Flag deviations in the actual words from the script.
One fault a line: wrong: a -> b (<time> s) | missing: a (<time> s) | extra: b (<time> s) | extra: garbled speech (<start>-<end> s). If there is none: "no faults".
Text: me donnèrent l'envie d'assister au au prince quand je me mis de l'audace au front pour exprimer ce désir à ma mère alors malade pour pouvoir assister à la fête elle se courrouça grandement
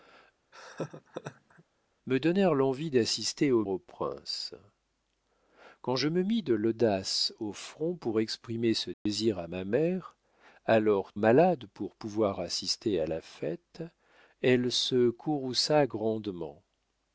no faults